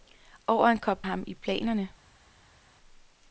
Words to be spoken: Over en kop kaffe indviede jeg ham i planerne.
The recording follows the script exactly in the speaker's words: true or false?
false